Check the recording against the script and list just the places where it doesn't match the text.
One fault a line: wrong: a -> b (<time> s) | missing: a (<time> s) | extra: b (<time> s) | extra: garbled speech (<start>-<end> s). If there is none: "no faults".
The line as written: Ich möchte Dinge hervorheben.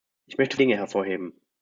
no faults